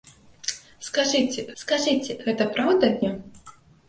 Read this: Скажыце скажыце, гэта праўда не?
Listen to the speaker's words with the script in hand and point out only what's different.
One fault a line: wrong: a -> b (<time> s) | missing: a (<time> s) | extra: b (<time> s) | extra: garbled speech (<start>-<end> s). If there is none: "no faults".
no faults